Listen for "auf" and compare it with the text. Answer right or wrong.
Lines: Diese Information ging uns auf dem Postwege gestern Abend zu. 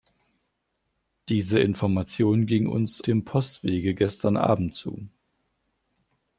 wrong